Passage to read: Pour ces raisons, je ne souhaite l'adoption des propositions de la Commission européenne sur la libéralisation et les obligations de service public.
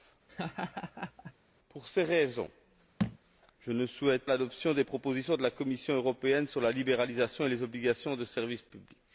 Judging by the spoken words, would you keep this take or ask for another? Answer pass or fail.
pass